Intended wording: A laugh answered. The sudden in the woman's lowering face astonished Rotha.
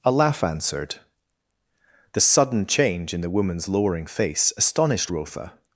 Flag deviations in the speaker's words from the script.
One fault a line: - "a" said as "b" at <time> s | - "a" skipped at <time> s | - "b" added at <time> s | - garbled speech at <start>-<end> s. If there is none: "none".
- "change" added at 2.6 s